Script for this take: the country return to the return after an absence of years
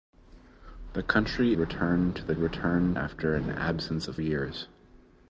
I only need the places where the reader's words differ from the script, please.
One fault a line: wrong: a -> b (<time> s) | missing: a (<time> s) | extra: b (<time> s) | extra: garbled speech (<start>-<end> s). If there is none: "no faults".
no faults